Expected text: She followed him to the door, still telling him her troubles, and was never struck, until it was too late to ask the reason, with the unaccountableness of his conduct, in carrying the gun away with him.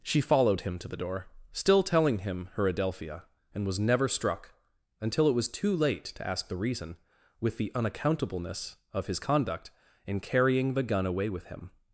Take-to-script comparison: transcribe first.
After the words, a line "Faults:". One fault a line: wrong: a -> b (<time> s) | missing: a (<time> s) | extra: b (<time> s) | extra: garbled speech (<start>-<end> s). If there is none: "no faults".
She followed him to the door, still telling him her adelphia, and was never struck, until it was too late to ask the reason, with the unaccountableness of his conduct, in carrying the gun away with him.
Faults:
wrong: troubles -> adelphia (2.7 s)